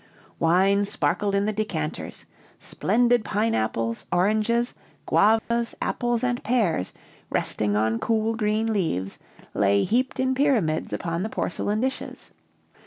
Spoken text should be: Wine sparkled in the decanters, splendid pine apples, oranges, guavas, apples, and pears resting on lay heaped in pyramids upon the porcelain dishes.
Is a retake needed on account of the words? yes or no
yes